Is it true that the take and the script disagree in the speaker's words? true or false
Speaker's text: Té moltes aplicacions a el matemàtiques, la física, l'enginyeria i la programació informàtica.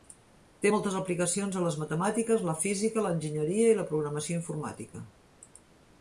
true